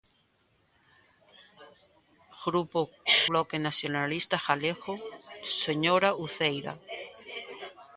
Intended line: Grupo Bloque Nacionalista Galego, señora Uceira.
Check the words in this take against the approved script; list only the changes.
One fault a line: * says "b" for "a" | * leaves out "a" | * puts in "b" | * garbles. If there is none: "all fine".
all fine